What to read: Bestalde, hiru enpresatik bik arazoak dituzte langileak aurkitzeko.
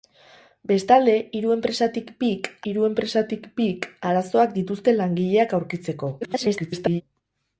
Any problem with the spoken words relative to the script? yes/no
yes